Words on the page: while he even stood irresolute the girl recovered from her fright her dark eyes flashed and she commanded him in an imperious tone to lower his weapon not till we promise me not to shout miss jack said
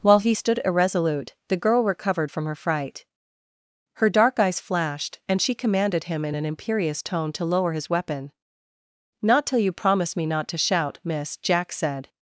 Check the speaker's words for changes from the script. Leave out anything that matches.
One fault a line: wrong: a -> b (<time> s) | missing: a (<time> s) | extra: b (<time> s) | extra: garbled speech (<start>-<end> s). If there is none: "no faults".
missing: even (0.3 s)
wrong: we -> you (9.6 s)